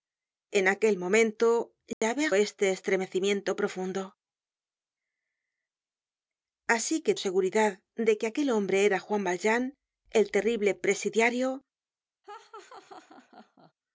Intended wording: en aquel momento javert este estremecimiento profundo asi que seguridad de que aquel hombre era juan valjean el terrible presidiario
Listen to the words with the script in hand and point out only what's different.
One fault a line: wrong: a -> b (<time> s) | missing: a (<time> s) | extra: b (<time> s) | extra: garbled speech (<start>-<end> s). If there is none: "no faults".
no faults